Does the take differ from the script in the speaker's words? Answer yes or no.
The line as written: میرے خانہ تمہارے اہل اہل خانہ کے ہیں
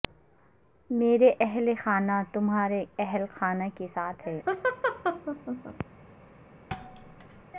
yes